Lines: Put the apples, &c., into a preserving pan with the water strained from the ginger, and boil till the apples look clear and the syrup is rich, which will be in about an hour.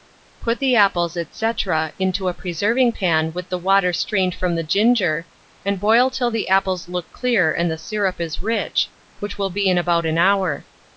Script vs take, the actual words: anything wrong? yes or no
no